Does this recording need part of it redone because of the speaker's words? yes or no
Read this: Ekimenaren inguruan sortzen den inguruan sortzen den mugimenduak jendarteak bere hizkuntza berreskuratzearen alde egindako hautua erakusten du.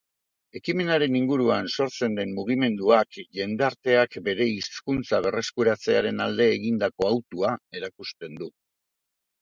yes